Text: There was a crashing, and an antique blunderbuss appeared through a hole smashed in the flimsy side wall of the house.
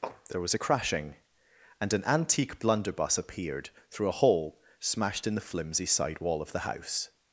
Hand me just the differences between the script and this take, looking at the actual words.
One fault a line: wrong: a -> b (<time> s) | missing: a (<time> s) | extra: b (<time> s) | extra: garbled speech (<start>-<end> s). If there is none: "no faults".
no faults